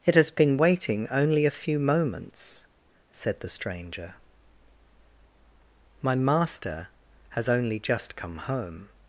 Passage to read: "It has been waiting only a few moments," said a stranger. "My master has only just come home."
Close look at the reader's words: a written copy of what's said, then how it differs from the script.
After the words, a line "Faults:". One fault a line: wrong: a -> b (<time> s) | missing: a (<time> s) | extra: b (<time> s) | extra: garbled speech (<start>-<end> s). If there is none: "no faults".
"It has been waiting only a few moments," said the stranger. "My master has only just come home."
Faults:
wrong: a -> the (3.4 s)